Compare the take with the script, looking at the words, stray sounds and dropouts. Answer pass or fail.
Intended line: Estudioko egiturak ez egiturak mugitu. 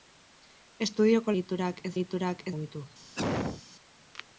fail